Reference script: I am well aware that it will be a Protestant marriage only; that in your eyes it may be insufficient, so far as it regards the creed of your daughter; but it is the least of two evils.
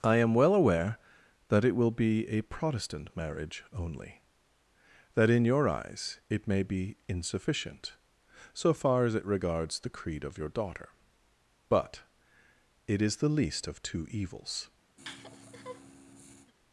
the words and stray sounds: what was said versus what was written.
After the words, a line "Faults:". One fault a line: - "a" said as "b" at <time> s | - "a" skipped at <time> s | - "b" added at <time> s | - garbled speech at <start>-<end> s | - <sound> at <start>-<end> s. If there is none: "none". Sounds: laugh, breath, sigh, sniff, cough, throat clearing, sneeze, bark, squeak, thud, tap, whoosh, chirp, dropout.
I am well aware that it will be a Protestant marriage only; that in your eyes it may be insufficient, so far as it regards the creed of your daughter; but it is the least of two evils.
Faults:
- laugh at 15.0-16.5 s